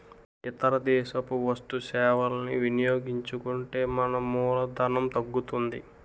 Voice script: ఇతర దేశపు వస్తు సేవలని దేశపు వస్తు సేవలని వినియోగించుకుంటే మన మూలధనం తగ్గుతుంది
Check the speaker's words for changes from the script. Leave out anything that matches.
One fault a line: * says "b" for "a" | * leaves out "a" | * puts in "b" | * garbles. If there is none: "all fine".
* leaves out "దేశపు వస్తు సేవలని"